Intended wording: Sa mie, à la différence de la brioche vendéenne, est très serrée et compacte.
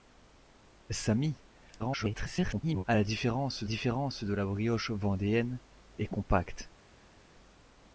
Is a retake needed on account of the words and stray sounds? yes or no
yes